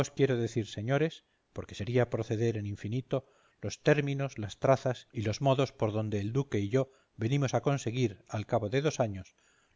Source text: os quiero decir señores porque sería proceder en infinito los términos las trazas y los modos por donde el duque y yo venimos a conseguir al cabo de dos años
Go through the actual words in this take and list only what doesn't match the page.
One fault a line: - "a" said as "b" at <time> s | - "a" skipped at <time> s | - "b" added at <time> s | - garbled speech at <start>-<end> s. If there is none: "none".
none